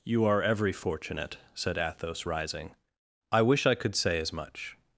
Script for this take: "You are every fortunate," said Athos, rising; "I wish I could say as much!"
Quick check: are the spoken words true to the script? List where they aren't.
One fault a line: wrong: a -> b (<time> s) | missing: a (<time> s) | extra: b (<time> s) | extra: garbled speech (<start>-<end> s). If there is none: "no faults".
no faults